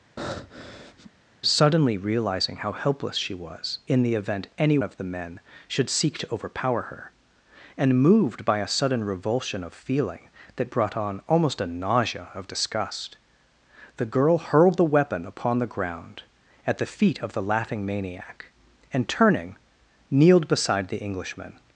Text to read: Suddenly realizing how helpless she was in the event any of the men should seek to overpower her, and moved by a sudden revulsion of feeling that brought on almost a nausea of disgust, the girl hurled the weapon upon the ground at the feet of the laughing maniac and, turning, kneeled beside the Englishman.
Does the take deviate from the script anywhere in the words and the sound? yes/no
yes